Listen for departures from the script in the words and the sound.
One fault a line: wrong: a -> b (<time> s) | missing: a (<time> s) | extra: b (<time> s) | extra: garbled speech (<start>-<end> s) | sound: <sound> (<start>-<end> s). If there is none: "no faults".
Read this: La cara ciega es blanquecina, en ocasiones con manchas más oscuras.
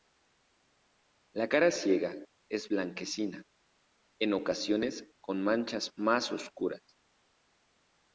no faults